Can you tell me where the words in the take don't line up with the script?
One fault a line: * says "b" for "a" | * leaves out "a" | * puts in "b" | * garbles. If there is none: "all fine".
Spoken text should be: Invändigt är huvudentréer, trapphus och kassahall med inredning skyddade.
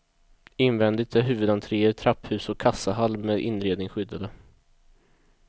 all fine